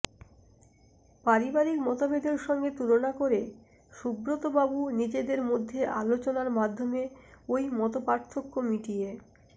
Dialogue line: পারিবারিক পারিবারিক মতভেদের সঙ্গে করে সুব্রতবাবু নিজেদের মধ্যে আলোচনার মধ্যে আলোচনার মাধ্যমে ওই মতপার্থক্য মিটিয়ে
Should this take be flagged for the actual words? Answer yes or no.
yes